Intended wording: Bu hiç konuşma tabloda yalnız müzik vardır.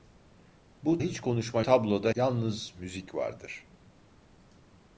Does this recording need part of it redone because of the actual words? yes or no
no